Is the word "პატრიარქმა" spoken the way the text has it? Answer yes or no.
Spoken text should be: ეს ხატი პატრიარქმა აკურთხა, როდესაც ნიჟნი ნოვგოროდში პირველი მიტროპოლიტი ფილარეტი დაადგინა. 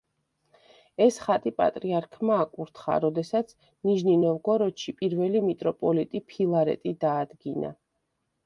yes